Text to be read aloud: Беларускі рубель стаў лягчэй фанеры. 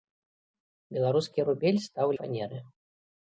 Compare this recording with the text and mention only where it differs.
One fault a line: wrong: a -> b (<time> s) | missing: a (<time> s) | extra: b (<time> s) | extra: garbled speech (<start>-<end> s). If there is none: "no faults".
missing: лягчэй (2.1 s)